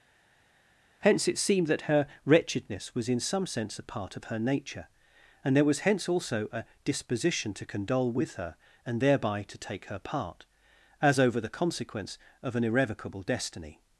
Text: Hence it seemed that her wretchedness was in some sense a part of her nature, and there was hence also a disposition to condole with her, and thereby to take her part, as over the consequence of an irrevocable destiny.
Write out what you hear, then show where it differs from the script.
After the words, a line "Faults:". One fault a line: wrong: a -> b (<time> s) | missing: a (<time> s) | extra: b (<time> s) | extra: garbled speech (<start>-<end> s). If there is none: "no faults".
Hence it seemed that her wretchedness was in some sense a part of her nature, and there was hence also a disposition to condole with her, and thereby to take her part, as over the consequence of an irrevocable destiny.
Faults:
no faults